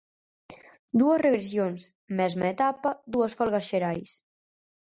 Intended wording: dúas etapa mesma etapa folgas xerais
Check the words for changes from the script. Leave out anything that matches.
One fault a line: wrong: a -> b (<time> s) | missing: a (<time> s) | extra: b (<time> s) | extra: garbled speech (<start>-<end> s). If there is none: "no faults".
wrong: etapa -> regresións (1.3 s)
extra: dúas (3.1 s)